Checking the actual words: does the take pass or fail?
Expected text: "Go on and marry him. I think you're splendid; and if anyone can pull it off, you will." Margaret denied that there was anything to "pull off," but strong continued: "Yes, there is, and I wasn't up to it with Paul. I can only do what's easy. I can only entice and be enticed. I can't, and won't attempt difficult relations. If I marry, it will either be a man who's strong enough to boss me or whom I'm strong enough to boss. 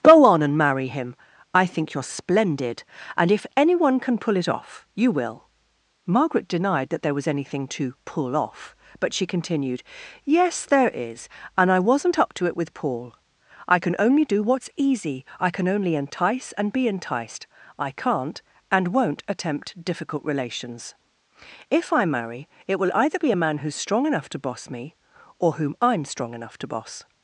fail